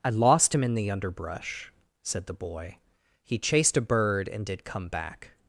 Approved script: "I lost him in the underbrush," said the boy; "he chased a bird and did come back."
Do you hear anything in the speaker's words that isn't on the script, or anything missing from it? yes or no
no